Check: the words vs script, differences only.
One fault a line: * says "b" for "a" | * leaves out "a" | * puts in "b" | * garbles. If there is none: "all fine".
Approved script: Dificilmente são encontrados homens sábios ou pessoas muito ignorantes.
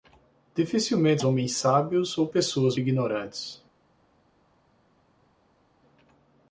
* leaves out "são encontrados"
* leaves out "muito"